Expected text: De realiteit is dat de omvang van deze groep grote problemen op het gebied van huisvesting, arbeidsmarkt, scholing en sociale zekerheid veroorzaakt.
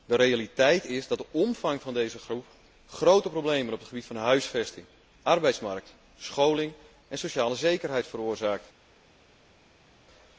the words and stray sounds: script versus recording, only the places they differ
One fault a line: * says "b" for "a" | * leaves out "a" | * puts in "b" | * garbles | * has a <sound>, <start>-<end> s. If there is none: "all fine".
all fine